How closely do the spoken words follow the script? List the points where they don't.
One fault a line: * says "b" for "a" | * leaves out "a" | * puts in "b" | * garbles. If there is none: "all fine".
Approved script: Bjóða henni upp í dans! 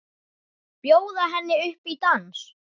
all fine